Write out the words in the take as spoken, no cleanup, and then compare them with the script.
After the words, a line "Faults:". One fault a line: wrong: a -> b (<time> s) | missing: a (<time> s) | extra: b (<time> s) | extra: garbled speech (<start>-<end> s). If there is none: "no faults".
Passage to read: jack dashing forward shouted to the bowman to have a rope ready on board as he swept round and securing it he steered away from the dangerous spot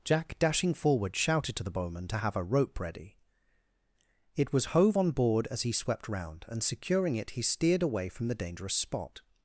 jack dashing forward shouted to the bowman to have a rope ready it was hove on board as he swept round and securing it he steered away from the dangerous spot
Faults:
extra: it was hove (4.4 s)